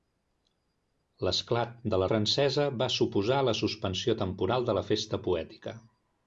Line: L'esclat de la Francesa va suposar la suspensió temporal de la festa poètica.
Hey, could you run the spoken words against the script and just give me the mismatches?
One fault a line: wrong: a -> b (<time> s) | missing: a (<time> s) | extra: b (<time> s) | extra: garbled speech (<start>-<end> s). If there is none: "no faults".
no faults